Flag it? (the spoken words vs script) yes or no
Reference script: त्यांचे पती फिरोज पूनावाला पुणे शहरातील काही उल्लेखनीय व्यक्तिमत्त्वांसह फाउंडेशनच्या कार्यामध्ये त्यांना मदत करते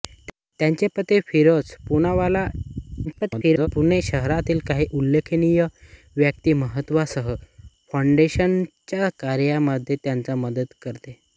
yes